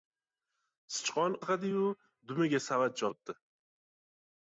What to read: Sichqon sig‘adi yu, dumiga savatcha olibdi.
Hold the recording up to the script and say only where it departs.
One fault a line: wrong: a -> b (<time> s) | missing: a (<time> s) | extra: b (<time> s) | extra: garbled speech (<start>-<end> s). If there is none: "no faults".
no faults